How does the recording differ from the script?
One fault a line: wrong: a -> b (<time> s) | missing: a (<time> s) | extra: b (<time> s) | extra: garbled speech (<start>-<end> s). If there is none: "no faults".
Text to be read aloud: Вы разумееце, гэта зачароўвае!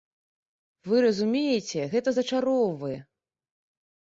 no faults